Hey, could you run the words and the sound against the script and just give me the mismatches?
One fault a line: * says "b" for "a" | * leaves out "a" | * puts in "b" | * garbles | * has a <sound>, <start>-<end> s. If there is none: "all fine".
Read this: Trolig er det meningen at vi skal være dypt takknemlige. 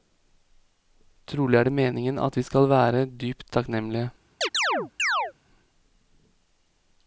* has a chirp, 4.4-5.3 s